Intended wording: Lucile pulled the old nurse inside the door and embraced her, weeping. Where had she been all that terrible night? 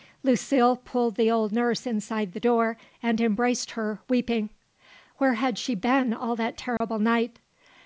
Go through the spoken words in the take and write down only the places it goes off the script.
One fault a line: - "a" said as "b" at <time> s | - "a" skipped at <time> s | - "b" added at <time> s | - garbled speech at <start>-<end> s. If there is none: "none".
none